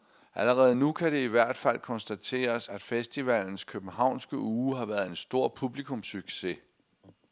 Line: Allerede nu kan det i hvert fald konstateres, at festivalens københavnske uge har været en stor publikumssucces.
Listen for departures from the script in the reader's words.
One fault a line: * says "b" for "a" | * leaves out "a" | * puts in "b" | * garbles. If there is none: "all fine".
all fine